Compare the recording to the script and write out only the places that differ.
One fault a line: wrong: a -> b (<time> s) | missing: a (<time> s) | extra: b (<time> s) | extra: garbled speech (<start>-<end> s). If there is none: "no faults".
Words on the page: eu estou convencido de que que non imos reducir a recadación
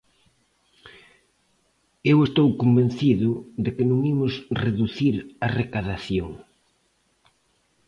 missing: que (3.8 s)